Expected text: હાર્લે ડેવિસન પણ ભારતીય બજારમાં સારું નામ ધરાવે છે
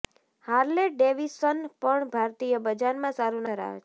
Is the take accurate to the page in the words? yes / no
no